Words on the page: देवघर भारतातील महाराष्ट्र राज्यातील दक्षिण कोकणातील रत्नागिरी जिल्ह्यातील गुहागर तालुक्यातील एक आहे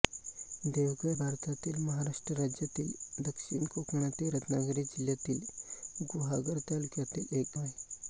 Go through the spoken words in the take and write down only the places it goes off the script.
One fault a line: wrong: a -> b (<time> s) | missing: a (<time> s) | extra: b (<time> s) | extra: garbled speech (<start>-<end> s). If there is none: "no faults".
no faults